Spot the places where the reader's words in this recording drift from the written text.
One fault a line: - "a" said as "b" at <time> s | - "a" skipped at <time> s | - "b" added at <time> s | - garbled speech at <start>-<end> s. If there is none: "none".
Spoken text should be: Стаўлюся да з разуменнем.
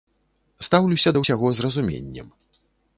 - "ўсяго" added at 1.2 s